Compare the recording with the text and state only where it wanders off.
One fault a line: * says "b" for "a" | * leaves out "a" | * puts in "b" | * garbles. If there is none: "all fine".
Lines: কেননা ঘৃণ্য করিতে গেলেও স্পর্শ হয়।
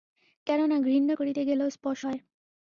all fine